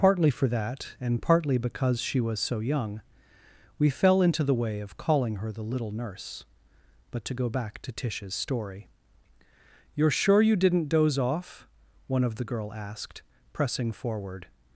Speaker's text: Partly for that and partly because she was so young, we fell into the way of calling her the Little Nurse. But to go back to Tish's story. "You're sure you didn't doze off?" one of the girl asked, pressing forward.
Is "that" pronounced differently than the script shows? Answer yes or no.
no